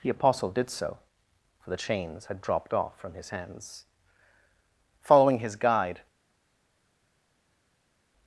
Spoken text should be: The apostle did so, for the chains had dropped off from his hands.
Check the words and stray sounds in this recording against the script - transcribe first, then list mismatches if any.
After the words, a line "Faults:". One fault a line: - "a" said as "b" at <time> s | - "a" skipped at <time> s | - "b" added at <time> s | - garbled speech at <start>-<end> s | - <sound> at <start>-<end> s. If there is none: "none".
The apostle did so, for the chains had dropped off from his hands. Following his guide
Faults:
- "Following his guide" added at 5.0 s